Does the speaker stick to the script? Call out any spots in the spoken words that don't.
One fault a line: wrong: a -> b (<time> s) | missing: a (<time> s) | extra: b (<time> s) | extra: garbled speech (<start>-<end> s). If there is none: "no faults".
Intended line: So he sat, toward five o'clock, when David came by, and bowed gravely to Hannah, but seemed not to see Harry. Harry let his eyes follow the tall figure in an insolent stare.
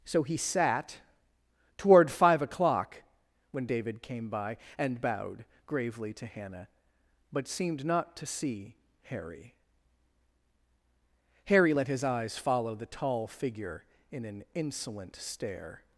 no faults